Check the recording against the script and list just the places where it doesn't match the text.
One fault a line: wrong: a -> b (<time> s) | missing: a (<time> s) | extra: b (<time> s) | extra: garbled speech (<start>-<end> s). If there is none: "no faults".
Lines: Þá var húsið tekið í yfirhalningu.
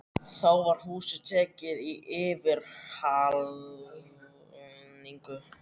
no faults